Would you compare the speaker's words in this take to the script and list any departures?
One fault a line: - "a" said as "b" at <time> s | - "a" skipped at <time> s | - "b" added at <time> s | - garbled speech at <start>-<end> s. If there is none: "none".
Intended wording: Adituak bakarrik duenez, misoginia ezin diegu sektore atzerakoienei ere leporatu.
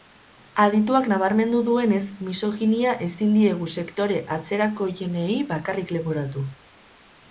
- "bakarrik" said as "nabarmendu" at 1.1 s
- "ere" said as "bakarrik" at 5.5 s